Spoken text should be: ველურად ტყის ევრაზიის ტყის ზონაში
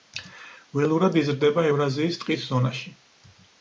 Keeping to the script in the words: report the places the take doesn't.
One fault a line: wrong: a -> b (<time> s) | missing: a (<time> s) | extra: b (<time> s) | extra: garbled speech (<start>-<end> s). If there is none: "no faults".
wrong: ტყის -> იზრდება (1.2 s)